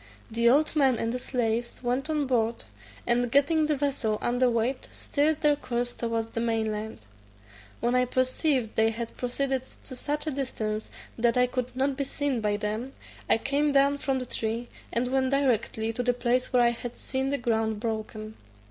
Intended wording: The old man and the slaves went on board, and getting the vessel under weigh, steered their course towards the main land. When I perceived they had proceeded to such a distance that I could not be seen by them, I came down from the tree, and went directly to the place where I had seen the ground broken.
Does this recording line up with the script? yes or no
yes